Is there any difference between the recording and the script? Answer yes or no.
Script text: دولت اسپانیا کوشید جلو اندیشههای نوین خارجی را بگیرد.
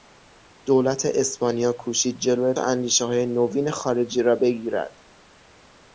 no